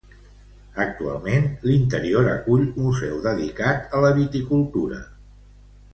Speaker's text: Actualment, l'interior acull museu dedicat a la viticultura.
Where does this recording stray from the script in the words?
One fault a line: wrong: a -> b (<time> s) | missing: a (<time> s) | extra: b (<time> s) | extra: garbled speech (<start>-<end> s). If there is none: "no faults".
no faults